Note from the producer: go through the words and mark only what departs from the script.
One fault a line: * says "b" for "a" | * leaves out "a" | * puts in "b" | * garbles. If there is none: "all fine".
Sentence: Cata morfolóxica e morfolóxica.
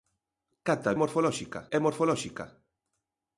all fine